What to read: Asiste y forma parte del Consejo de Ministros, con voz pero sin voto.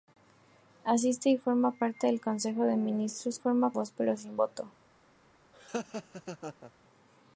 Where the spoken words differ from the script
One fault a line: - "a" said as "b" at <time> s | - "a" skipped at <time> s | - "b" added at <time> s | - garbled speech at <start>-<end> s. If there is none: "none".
- "con" said as "forma" at 3.4 s